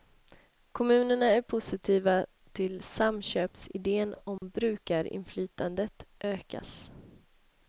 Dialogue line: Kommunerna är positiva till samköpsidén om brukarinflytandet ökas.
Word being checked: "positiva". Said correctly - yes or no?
yes